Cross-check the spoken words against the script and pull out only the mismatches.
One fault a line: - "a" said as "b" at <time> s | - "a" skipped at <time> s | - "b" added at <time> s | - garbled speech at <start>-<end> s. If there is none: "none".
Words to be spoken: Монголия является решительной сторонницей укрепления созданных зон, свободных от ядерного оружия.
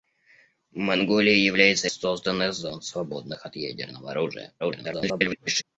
- "решительной сторонницей укрепления" skipped at 1.9 s
- garbled speech at 4.6-5.6 s